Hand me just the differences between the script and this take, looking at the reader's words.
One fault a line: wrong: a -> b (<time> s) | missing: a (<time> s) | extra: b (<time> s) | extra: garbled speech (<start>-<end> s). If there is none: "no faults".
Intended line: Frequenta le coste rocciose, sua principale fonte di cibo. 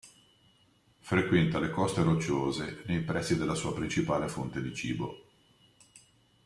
extra: nei pressi della (2.9 s)